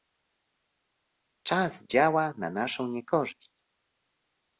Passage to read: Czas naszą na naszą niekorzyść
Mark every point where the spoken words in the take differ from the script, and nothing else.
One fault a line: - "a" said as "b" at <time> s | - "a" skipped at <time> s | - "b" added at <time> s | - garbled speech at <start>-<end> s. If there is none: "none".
- "naszą" said as "działa" at 1.8 s